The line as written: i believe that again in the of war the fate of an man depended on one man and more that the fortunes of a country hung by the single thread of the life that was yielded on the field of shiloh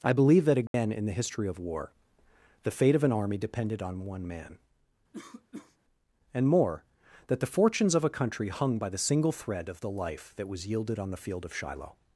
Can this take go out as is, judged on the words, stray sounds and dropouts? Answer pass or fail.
fail